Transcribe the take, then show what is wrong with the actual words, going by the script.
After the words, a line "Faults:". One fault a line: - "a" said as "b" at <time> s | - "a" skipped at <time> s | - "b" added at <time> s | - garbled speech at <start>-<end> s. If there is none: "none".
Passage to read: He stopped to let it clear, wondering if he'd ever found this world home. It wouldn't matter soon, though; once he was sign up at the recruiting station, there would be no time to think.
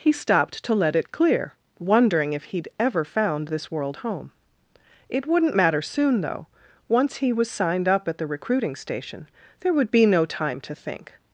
He stopped to let it clear, wondering if he'd ever found this world home. It wouldn't matter soon, though; once he was signed up at the recruiting station, there would be no time to think.
Faults:
- "sign" said as "signed" at 7.5 s